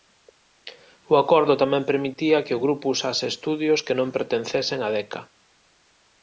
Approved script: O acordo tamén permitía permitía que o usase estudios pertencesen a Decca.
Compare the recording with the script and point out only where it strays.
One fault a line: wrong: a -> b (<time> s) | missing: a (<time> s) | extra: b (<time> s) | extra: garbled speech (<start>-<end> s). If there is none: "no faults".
missing: permitía (2.4 s)
extra: grupo (2.6 s)
extra: que non (3.9 s)